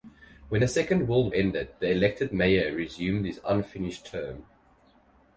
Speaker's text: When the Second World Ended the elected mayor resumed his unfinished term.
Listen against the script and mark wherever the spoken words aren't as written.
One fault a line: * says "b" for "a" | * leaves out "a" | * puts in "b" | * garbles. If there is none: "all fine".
all fine